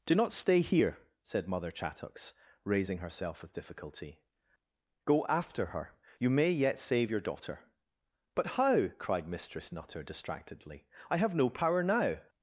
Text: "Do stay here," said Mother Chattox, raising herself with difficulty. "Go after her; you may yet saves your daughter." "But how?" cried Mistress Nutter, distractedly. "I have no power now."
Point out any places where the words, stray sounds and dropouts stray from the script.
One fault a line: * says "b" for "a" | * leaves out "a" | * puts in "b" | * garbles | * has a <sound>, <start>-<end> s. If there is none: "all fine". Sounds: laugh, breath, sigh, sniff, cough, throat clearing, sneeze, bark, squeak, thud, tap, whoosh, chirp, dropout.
* puts in "not"
* says "save" for "saves"